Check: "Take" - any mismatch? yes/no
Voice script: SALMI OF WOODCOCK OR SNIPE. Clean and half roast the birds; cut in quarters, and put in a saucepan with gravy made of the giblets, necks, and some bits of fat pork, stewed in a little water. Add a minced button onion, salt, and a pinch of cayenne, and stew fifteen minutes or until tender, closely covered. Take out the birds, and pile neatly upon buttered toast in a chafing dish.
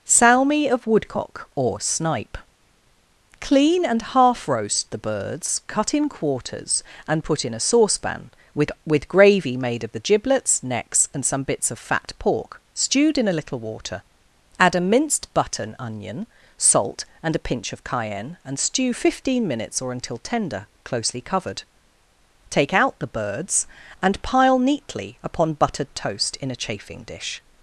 no